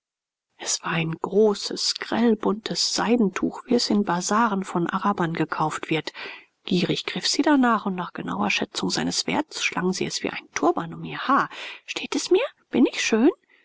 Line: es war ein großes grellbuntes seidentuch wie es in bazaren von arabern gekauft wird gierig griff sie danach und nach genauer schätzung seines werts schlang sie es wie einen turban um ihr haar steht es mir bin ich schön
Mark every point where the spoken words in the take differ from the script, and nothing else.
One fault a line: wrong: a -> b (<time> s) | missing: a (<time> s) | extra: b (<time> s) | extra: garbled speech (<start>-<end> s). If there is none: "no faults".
no faults